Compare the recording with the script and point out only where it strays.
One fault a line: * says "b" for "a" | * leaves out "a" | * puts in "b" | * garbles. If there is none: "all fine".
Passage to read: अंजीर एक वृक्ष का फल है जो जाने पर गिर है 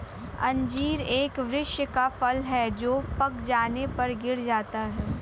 * puts in "पक"
* puts in "जाता"